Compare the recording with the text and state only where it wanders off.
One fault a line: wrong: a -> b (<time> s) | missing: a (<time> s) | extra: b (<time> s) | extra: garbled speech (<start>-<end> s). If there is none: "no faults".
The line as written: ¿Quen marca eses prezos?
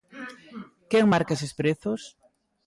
no faults